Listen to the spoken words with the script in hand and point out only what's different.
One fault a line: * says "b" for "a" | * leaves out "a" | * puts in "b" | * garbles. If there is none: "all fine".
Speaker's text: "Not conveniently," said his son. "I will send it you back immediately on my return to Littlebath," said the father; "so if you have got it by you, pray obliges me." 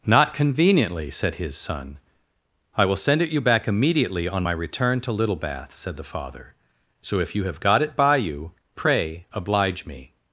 * says "oblige" for "obliges"